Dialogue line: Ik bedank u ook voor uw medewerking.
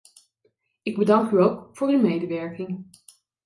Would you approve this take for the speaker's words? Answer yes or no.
yes